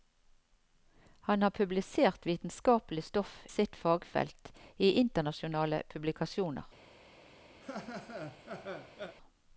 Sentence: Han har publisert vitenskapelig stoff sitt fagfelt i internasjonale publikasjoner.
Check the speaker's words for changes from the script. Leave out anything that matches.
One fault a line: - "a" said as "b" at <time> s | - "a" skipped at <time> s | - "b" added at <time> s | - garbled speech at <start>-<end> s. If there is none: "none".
none